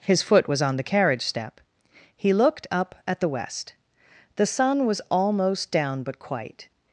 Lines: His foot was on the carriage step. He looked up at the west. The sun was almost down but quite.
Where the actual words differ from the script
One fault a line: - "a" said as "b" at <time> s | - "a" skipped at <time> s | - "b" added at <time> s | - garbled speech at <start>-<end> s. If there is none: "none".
none